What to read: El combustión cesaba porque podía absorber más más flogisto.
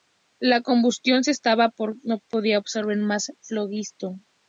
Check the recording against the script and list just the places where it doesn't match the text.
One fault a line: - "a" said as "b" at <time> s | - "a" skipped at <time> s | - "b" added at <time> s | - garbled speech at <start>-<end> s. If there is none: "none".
- "El" said as "La" at 0.4 s
- "no" added at 2.1 s
- "más" skipped at 3.3 s